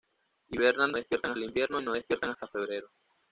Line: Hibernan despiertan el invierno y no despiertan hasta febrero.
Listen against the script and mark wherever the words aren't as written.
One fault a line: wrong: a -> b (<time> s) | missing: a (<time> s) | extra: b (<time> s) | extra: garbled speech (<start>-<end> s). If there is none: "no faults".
no faults